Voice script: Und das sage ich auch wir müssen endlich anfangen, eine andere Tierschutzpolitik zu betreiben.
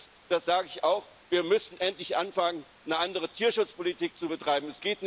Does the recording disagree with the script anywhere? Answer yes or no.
no